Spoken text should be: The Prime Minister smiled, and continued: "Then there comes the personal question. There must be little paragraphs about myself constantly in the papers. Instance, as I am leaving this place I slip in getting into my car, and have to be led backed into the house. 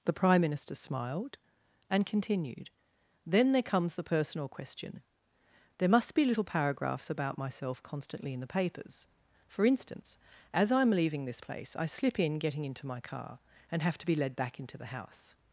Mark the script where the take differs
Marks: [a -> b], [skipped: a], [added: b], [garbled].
The Prime Minister smiled, and continued: "Then there comes the personal question. There must be little paragraphs about myself constantly in the papers. [added: For] Instance, as I am leaving this place I slip in getting into my car, and have to be led [backed -> back] into the house.